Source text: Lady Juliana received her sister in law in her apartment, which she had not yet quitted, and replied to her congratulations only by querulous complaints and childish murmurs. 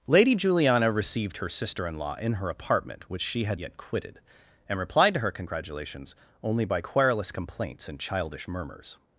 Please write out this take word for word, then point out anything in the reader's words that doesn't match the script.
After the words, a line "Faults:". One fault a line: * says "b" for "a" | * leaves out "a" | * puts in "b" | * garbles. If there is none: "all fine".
Lady Juliana received her sister in law in her apartment, which she had yet quitted, and replied to her congratulations only by querulous complaints and childish murmurs.
Faults:
* leaves out "not"